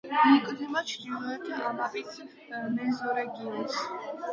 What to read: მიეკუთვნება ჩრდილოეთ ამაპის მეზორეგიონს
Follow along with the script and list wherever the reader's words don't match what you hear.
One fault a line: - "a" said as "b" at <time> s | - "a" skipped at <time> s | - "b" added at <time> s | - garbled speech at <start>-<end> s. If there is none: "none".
none